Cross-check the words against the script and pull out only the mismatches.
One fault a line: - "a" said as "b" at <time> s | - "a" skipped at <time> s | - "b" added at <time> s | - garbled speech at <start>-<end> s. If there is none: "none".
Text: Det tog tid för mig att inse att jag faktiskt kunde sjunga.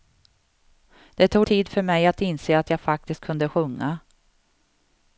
none